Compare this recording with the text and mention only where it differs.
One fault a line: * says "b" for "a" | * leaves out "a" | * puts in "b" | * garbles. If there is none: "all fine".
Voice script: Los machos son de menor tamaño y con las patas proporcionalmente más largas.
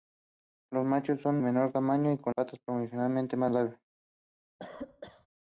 * leaves out "de"
* leaves out "las"